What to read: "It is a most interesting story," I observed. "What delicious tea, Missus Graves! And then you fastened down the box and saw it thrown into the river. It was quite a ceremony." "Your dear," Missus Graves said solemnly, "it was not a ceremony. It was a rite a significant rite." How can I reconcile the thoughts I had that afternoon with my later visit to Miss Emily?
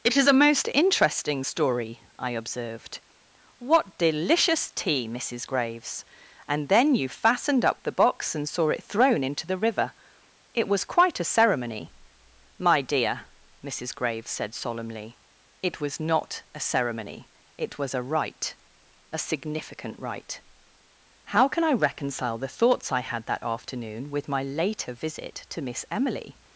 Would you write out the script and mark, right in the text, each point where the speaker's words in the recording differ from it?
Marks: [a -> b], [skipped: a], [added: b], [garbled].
"It is a most interesting story," I observed. "What delicious tea, Missus Graves! And then you fastened [down -> up] the box and saw it thrown into the river. It was quite a ceremony." ["Your -> My] dear," Missus Graves said solemnly, "it was not a ceremony. It was a rite a significant rite." How can I reconcile the thoughts I had that afternoon with my later visit to Miss Emily?